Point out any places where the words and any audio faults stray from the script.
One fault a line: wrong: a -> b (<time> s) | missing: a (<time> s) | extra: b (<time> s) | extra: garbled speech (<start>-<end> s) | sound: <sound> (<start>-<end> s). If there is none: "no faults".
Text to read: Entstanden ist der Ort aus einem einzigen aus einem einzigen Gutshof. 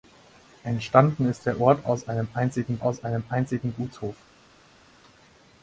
no faults